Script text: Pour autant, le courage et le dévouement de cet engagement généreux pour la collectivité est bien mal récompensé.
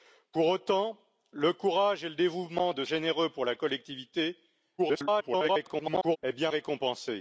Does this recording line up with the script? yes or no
no